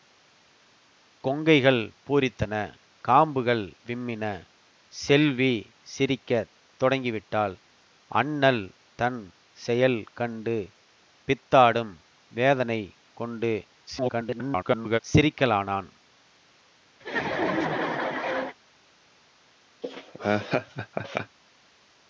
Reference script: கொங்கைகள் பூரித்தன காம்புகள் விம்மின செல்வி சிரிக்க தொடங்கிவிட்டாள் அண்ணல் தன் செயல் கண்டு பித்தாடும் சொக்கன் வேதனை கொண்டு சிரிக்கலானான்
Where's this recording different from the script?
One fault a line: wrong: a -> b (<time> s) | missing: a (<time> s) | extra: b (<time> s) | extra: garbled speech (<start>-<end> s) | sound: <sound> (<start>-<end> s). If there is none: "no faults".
missing: சொக்கன் (11.9 s)
extra: garbled speech (13.9-15.0 s)
sound: laugh (17.0-18.6 s)
sound: laugh (19.8-21.4 s)